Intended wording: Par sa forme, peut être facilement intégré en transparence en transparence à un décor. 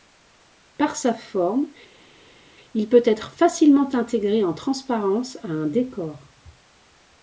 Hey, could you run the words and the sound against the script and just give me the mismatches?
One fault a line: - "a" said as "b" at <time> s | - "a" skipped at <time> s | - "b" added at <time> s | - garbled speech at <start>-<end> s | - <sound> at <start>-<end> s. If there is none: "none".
- "il" added at 2.7 s
- "en transparence" skipped at 5.4 s